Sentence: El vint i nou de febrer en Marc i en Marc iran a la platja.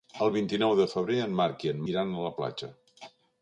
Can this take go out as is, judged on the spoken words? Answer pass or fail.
fail